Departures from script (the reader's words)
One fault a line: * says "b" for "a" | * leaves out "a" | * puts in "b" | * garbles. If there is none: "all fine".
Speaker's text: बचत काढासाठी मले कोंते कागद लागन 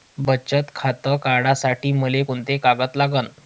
* puts in "खातं"